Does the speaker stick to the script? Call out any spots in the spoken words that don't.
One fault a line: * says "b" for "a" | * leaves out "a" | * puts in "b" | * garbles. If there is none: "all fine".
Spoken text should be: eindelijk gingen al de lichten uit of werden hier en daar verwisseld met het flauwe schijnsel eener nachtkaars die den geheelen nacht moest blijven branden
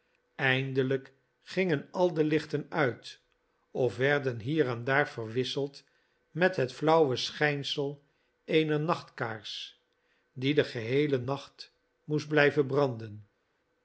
all fine